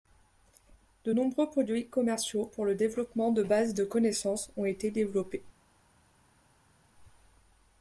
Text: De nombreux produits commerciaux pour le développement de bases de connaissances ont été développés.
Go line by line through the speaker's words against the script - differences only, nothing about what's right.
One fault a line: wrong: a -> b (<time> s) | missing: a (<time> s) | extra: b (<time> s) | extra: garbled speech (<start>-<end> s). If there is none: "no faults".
no faults